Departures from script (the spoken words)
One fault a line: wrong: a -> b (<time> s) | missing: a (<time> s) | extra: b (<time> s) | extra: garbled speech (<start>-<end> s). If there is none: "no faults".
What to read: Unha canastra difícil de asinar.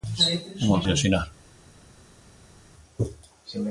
missing: canastra difícil (0.8 s)